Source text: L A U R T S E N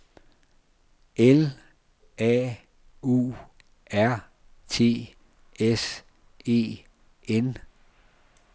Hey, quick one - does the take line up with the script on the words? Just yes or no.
yes